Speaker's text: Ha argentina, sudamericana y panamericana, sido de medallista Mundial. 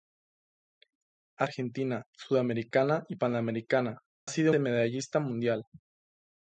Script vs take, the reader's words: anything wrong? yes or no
no